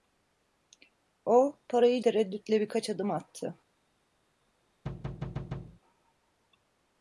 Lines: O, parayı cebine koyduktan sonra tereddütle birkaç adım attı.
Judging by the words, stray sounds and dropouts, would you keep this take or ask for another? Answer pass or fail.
fail